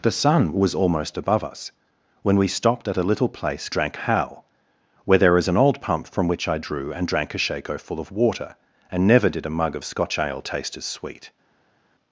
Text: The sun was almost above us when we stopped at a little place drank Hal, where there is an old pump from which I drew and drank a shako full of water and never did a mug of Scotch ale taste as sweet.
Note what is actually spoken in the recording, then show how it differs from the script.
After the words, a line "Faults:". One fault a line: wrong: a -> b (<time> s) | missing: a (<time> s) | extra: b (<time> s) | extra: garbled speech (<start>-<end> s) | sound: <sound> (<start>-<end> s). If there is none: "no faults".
The sun was almost above us when we stopped at a little place drank Hal, where there is an old pump from which I drew and drank a shako full of water and never did a mug of Scotch ale taste as sweet.
Faults:
no faults